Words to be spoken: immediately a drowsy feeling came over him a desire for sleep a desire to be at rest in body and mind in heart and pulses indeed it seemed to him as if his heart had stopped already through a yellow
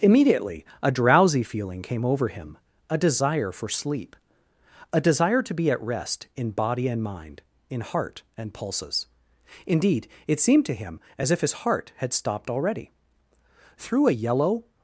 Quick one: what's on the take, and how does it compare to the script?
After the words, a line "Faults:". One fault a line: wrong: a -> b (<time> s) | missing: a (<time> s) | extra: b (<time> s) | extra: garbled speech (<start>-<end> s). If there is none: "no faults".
immediately a drowsy feeling came over him a desire for sleep a desire to be at rest in body and mind in heart and pulses indeed it seemed to him as if his heart had stopped already through a yellow
Faults:
no faults